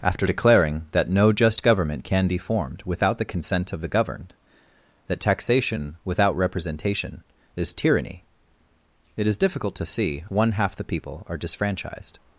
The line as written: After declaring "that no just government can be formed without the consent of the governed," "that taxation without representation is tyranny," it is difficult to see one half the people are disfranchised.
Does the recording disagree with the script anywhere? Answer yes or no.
no